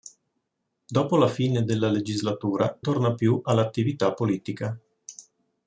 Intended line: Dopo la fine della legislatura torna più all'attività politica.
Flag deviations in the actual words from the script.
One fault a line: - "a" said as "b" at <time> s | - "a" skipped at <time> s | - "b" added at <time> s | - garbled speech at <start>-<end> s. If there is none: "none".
none